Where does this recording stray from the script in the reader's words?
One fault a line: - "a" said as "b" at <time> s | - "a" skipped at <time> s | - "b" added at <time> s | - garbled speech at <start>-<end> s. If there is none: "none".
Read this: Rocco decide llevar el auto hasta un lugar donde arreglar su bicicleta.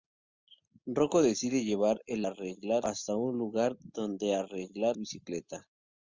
- "auto" said as "arreglar" at 2.2 s
- "su" skipped at 5.0 s